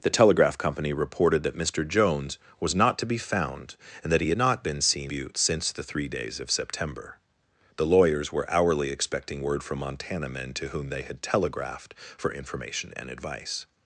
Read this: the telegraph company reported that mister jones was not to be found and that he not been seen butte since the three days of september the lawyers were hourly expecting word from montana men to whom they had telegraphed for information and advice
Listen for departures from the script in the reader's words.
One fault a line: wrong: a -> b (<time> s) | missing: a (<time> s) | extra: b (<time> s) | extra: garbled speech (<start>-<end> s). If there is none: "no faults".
no faults